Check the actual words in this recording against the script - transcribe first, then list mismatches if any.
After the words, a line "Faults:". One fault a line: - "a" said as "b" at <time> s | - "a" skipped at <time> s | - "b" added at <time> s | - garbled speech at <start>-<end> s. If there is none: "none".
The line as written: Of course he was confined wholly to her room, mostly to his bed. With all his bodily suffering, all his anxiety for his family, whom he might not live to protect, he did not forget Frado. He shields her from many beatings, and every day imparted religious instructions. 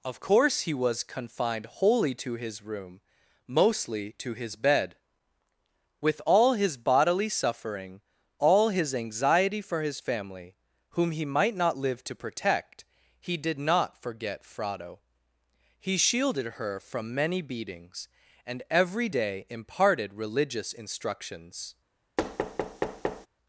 Of course he was confined wholly to his room, mostly to his bed. With all his bodily suffering, all his anxiety for his family, whom he might not live to protect, he did not forget Frado. He shielded her from many beatings, and every day imparted religious instructions.
Faults:
- "her" said as "his" at 2.3 s
- "shields" said as "shielded" at 16.0 s